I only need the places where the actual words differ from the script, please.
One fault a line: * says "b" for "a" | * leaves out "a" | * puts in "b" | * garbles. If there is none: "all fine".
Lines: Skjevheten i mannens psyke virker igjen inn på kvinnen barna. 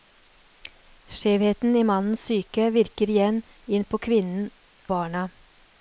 all fine